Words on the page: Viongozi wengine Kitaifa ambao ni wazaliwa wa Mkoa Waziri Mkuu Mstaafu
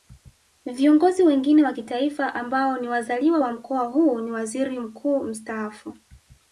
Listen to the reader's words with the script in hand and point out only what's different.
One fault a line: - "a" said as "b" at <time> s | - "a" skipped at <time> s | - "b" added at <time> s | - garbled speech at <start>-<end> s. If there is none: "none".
- "wa" added at 1.6 s
- "huu ni" added at 3.8 s